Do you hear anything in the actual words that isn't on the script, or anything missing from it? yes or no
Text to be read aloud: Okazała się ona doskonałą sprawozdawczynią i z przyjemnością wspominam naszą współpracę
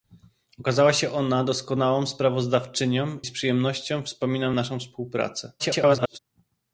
yes